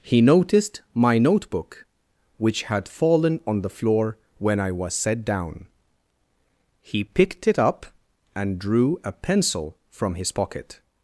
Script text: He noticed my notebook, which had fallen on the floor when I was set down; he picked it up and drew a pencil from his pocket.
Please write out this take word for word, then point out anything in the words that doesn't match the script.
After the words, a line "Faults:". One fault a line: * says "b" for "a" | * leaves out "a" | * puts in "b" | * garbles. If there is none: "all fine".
He noticed my notebook, which had fallen on the floor when I was set down; he picked it up and drew a pencil from his pocket.
Faults:
all fine